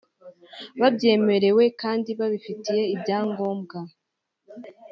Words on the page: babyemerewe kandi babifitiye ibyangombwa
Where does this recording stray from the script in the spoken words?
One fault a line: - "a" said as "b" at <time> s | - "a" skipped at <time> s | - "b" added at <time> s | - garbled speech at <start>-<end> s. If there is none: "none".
none